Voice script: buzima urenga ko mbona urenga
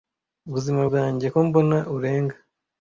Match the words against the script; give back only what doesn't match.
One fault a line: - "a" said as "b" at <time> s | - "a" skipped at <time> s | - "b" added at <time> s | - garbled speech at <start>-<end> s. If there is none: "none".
- "urenga" said as "bwanjye" at 0.9 s